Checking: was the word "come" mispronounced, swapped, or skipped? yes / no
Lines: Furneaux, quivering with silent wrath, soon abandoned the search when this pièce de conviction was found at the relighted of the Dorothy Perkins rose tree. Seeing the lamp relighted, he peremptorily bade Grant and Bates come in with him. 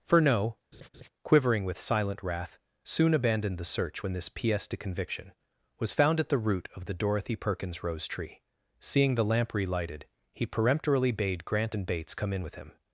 no